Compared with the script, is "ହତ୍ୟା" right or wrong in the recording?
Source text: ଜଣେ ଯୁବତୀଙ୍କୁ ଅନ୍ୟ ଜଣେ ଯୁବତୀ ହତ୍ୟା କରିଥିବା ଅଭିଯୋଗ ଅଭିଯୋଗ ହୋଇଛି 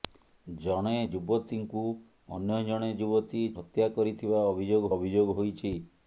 right